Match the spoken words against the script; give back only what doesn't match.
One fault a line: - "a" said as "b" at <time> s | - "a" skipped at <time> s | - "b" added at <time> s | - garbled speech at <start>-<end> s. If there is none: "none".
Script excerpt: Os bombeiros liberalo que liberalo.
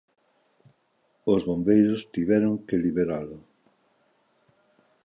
- "liberalo" said as "tiveron" at 2.1 s